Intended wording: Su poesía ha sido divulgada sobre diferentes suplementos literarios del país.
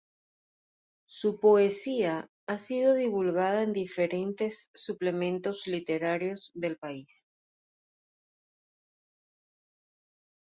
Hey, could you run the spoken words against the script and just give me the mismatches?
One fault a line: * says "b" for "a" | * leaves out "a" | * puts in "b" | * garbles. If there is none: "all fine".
* says "en" for "sobre"